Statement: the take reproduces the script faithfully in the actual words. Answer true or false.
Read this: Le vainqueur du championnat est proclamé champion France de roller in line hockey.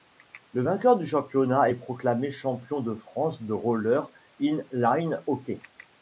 false